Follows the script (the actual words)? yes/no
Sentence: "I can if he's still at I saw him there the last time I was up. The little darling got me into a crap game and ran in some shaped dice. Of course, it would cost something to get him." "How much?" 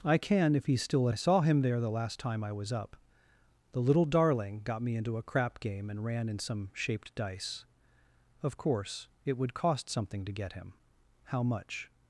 yes